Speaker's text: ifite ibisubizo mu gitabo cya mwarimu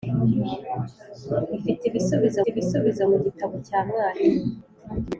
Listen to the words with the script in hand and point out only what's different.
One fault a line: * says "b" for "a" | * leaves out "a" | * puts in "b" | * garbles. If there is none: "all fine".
* puts in "ibisubizo"